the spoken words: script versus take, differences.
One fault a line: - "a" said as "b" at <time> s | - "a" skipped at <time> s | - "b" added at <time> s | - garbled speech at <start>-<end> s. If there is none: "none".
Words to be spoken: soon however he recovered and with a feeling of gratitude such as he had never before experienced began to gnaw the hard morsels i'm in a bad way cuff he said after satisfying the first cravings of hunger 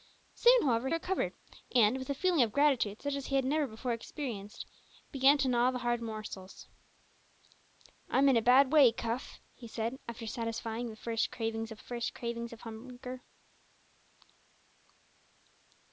- "he" skipped at 0.9 s
- "first cravings of" added at 11.8 s